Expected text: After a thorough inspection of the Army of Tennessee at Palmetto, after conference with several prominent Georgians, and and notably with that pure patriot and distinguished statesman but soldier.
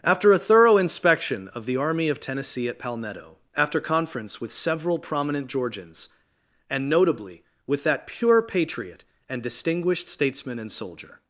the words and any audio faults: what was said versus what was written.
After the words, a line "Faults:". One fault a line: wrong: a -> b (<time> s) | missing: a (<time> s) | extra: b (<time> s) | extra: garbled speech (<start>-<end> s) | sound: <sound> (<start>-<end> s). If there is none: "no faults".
After a thorough inspection of the Army of Tennessee at Palmetto, after conference with several prominent Georgians, and notably with that pure patriot and distinguished statesman and soldier.
Faults:
missing: and (6.9 s)
wrong: but -> and (10.6 s)